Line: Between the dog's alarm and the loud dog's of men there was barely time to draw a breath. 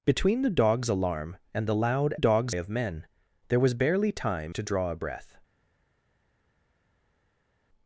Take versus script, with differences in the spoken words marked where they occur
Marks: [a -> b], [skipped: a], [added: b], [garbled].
Between the dog's alarm and the loud dog's of men there was barely time to draw a breath.